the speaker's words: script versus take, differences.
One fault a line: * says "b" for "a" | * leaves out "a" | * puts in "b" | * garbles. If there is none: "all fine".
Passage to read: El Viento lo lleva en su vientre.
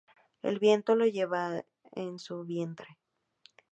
all fine